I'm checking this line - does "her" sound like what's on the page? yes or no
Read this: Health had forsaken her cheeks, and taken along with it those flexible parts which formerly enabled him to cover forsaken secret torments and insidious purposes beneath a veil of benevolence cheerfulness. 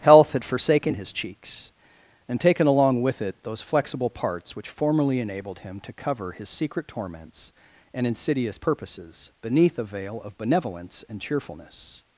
no